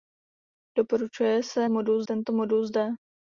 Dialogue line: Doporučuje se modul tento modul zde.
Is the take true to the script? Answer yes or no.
yes